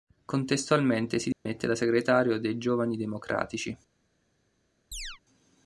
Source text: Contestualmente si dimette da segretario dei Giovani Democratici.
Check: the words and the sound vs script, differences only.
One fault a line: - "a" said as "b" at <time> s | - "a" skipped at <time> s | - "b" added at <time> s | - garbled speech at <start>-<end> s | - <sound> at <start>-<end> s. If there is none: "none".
- dropout at 1.3-1.5 s
- chirp at 4.9-5.2 s